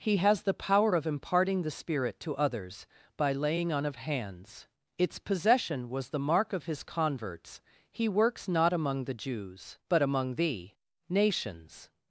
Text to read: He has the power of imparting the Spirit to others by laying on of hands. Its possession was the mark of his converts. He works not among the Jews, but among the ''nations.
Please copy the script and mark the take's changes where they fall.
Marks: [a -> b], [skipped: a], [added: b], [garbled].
He has the power of imparting the Spirit to others by laying on of hands. Its possession was the mark of his converts. He works not among the Jews, but among the ''nations.